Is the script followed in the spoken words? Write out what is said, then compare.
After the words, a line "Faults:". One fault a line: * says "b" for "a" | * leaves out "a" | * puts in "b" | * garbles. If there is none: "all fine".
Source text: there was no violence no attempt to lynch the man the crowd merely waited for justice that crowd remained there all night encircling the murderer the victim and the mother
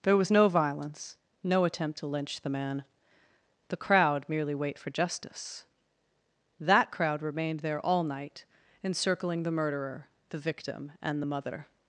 there was no violence no attempt to lynch the man the crowd merely wait for justice that crowd remained there all night encircling the murderer the victim and the mother
Faults:
* says "wait" for "waited"